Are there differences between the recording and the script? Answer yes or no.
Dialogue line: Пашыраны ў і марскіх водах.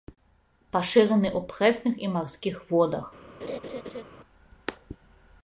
yes